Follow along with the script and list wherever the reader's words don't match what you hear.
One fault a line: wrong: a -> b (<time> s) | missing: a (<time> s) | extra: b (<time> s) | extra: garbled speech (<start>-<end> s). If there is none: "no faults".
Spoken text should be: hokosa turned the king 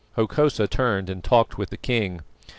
extra: and talked with (1.1 s)